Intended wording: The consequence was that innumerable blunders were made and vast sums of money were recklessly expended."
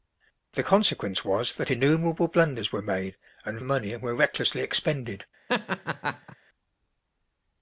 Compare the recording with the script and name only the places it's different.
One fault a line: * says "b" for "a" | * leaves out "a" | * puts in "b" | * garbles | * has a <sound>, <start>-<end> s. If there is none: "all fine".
* leaves out "vast sums"
* has a laugh, 5.5-6.4 s